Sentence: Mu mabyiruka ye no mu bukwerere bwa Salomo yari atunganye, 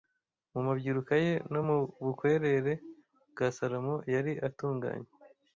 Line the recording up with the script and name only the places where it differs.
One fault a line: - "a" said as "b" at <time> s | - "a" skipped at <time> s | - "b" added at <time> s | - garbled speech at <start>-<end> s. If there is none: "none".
none